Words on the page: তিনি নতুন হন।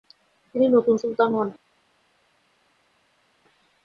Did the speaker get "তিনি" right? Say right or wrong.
right